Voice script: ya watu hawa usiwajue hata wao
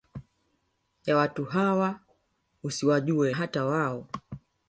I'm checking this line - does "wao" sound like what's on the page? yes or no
yes